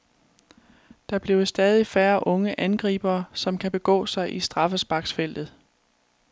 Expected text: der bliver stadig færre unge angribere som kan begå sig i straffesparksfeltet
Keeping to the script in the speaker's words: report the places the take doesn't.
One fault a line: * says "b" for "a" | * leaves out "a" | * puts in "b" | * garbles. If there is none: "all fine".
all fine